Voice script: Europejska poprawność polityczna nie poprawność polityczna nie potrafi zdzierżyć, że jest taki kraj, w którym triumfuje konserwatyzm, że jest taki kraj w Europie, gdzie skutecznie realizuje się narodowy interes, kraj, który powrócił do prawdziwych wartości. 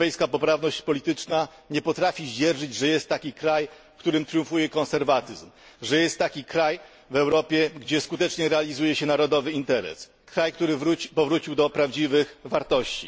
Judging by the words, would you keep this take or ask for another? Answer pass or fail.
fail